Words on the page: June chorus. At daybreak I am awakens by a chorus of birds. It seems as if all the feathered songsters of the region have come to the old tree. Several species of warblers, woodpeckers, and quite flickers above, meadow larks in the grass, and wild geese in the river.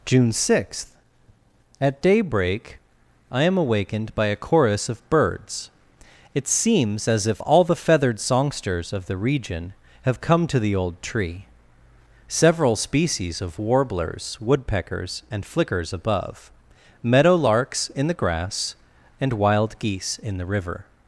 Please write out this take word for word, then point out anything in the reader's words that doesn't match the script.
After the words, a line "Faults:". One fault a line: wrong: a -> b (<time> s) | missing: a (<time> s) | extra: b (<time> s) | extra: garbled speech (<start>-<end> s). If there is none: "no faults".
June sixth. At daybreak I am awakened by a chorus of birds. It seems as if all the feathered songsters of the region have come to the old tree. Several species of warblers, woodpeckers, and flickers above, meadow larks in the grass, and wild geese in the river.
Faults:
wrong: chorus -> sixth (0.3 s)
wrong: awakens -> awakened (3.6 s)
missing: quite (15.4 s)